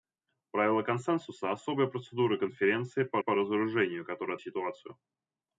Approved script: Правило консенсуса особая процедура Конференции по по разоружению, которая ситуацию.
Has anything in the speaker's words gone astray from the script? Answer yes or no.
no